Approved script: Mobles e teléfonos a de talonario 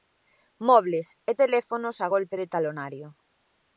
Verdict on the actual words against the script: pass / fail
fail